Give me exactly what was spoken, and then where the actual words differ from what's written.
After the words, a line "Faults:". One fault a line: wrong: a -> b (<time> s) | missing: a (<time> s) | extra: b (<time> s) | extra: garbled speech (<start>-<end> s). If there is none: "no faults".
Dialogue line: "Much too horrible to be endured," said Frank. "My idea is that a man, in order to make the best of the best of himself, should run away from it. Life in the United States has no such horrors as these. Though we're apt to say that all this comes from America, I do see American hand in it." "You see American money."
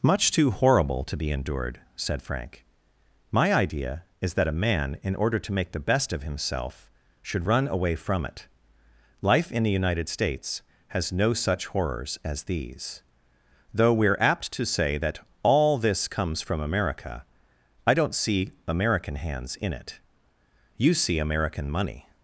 "Much too horrible to be endured," said Frank. "My idea is that a man, in order to make the best of himself, should run away from it. Life in the United States has no such horrors as these. Though we're apt to say that all this comes from America, I don't see American hands in it." "You see American money."
Faults:
missing: the best of (6.2 s)
wrong: do -> don't (17.9 s)
wrong: hand -> hands (19.2 s)